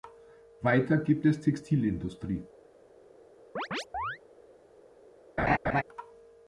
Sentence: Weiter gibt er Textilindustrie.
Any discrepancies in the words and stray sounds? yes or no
yes